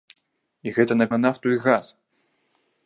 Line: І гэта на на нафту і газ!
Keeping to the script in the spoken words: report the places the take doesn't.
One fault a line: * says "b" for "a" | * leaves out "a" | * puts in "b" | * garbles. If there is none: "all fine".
all fine